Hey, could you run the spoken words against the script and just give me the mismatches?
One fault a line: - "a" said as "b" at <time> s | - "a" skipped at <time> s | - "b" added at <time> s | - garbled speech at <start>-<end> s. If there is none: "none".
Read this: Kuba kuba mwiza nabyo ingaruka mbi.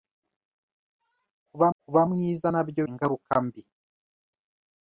none